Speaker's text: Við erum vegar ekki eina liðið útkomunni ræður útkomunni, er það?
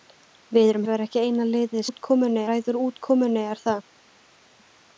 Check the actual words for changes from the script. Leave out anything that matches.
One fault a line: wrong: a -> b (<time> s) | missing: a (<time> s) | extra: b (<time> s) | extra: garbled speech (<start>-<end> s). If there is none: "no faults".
no faults